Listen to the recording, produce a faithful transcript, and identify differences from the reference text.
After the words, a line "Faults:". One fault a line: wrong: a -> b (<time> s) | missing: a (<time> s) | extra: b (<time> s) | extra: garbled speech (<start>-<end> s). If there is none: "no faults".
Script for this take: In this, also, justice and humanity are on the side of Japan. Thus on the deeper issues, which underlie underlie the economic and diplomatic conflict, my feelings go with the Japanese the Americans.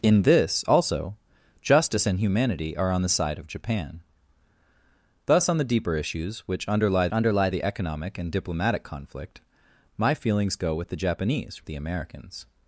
In this, also, justice and humanity are on the side of Japan. Thus on the deeper issues, which underlie underlie the economic and diplomatic conflict, my feelings go with the Japanese the Americans.
Faults:
no faults